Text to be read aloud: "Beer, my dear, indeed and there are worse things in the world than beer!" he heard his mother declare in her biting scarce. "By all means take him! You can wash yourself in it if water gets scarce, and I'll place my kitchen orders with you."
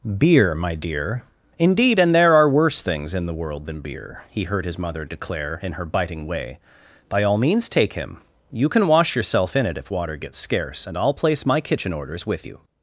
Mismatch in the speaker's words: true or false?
true